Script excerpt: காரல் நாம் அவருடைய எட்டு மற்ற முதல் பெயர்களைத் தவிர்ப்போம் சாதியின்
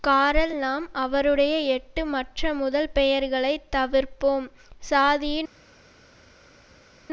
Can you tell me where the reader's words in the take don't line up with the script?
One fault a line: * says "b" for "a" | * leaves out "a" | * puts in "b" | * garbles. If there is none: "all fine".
all fine